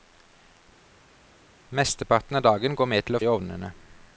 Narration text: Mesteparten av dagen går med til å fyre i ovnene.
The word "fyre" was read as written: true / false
false